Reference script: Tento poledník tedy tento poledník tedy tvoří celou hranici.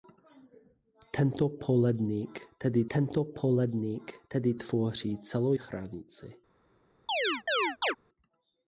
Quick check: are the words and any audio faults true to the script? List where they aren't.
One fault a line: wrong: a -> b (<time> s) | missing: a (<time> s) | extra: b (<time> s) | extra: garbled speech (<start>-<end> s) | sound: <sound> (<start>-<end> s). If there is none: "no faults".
sound: chirp (7.1-8.0 s)